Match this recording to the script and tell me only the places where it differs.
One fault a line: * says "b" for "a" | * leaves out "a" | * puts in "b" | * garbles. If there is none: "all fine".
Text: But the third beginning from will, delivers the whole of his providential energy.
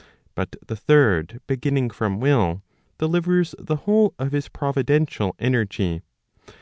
all fine